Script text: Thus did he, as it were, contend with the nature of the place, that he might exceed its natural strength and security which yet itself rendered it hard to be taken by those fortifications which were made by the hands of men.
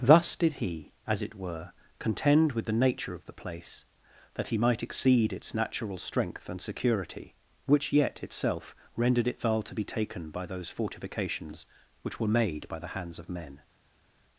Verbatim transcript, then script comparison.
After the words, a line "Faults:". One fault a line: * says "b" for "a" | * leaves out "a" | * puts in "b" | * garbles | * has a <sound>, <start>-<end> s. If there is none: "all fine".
Thus did he, as it were, contend with the nature of the place, that he might exceed its natural strength and security which yet itself rendered it thal to be taken by those fortifications which were made by the hands of men.
Faults:
* says "thal" for "hard"